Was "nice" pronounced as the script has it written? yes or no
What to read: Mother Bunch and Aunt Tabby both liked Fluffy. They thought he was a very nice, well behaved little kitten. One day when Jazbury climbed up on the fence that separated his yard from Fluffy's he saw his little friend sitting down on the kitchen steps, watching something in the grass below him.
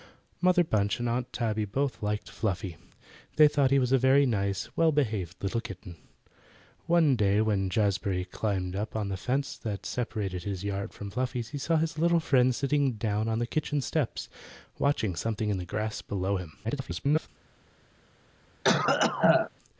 yes